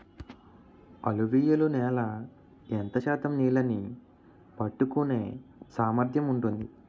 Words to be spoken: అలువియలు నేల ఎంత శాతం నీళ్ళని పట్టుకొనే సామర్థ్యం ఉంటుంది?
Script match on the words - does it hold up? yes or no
yes